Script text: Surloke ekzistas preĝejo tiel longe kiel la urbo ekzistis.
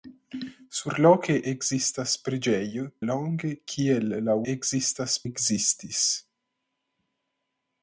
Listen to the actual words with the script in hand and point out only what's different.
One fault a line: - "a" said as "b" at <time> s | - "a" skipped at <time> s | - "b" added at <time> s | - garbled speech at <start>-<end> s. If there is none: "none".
- "tiel" skipped at 2.9 s
- "urbo" said as "ekzistas" at 4.5 s